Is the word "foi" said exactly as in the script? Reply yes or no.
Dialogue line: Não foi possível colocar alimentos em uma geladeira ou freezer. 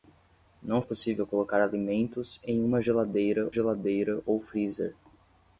no